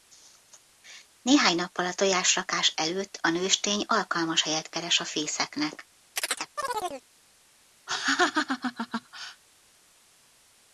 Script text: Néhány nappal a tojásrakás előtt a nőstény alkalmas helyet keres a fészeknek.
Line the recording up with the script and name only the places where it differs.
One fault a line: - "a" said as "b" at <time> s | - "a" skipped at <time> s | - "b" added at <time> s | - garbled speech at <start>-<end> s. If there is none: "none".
none